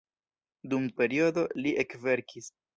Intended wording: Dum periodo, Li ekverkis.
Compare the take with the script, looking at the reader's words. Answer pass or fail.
pass